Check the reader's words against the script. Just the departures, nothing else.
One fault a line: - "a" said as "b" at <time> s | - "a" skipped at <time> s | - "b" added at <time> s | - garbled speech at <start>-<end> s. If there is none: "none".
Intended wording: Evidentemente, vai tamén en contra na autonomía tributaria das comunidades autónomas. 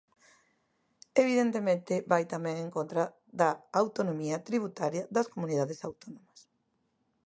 - "na" said as "da" at 3.4 s